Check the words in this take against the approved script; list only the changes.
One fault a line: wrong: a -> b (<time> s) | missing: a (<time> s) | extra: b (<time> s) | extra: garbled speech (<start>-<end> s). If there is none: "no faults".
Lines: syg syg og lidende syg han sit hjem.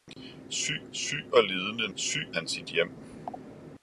no faults